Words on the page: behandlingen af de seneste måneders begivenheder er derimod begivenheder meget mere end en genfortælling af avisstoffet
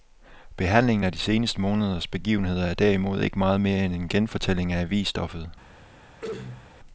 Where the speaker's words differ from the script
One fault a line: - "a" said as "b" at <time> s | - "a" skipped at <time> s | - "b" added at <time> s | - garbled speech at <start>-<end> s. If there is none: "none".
- "begivenheder" said as "ikke" at 3.2 s